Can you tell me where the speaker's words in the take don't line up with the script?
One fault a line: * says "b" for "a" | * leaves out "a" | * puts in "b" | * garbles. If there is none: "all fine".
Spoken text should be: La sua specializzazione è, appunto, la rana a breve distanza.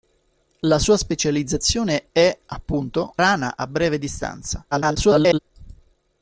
* leaves out "la"
* garbles